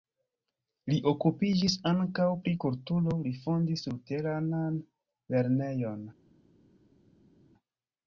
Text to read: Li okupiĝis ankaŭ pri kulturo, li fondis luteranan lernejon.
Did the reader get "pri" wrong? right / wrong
right